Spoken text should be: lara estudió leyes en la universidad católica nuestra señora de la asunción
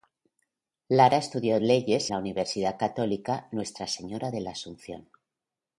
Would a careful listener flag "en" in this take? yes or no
yes